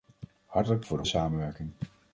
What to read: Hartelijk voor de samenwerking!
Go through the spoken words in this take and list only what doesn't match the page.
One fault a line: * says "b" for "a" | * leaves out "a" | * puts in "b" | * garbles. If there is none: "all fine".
all fine